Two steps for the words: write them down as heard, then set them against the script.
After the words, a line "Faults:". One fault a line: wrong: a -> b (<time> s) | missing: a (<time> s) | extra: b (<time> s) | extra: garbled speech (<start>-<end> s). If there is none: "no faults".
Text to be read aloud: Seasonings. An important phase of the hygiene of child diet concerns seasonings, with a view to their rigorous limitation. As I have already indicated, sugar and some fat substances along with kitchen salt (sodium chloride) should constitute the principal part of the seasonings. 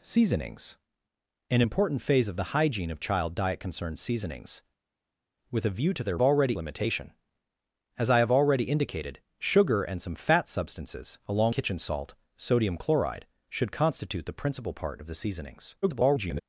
Seasonings. An important phase of the hygiene of child diet concerns seasonings, with a view to their already limitation. As I have already indicated, sugar and some fat substances along kitchen salt (sodium chloride) should constitute the principal part of the seasonings. [garbled]
Faults:
wrong: rigorous -> already (6.2 s)
missing: with (11.6 s)
extra: garbled speech (15.8-16.4 s)